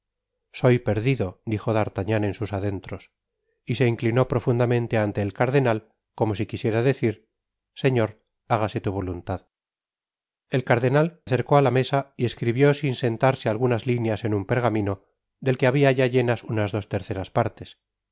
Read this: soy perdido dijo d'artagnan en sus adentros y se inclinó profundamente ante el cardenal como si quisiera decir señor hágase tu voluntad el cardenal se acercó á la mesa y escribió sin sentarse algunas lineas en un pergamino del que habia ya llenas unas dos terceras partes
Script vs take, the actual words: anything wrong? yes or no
yes